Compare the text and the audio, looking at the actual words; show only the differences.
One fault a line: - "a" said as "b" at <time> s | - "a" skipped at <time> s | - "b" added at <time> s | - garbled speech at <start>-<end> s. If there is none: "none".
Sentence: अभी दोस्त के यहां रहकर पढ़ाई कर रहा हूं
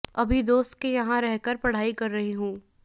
- "रहा" said as "रही" at 2.1 s